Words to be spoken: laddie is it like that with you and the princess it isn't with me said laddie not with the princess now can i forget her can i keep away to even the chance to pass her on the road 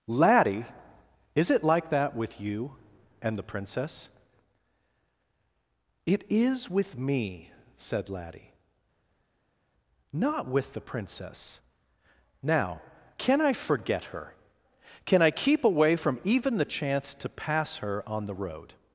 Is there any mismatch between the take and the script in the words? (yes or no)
yes